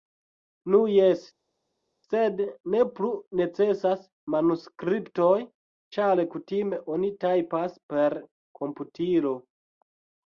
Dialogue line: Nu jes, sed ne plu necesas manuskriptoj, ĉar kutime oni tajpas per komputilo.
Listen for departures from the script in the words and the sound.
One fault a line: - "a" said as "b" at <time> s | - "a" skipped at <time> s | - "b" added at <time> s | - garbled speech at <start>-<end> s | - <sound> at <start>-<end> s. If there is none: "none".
none